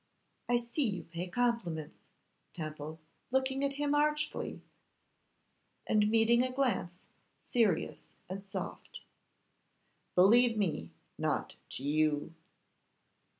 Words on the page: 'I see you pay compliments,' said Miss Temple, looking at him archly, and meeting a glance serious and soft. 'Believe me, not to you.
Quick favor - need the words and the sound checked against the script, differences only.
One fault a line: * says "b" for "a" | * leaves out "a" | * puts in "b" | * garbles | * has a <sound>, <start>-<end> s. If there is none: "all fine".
* leaves out "said Miss"